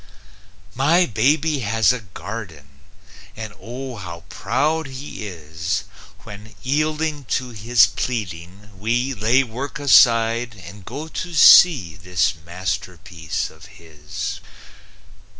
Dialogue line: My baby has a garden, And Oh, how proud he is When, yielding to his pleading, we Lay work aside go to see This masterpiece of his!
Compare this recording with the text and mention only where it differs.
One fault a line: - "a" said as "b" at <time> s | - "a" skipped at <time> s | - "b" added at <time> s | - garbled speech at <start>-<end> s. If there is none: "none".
- "and" added at 10.6 s